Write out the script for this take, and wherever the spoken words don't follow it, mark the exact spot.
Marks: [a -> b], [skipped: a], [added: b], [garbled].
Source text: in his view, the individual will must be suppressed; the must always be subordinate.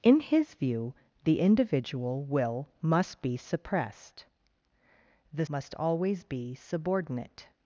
in his view, the individual will must be suppressed; the must always be subordinate.